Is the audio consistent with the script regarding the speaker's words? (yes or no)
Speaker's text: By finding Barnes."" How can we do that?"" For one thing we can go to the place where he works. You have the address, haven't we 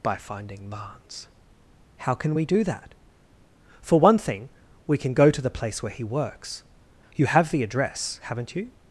no